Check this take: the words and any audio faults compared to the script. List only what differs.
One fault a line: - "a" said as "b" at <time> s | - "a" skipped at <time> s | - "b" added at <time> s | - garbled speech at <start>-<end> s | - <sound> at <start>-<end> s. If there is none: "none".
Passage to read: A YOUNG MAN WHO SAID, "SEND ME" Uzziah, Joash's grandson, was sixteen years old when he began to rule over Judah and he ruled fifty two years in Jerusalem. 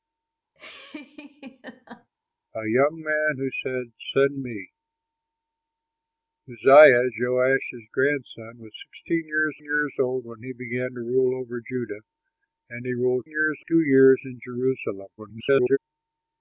- laugh at 0.6-2.1 s
- "years" added at 9.6 s
- "fifty" said as "years" at 13.3 s
- garbled speech at 15.2-15.8 s